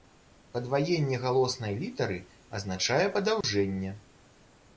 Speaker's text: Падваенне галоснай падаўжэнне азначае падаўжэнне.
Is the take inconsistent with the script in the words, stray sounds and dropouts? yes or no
yes